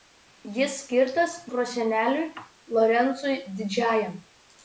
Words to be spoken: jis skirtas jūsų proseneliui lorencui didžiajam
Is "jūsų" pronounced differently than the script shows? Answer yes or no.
yes